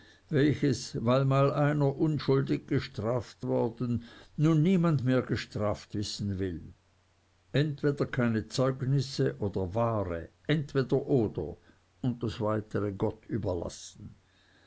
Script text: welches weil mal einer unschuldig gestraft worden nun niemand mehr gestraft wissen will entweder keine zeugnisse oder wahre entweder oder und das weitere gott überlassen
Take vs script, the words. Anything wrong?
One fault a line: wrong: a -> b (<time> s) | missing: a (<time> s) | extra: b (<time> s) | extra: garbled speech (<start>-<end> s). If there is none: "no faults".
no faults